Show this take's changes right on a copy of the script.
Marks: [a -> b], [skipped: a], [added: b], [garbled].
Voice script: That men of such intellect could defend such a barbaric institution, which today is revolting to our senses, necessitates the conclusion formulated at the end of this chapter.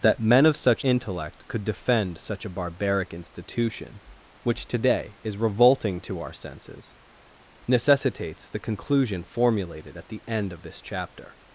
That men of such intellect could defend such a barbaric institution, which today is revolting to our senses, necessitates the conclusion formulated at the end of this chapter.